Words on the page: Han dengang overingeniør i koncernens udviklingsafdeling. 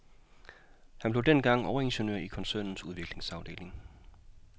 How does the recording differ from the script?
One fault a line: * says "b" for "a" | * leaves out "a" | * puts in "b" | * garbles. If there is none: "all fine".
* puts in "blev"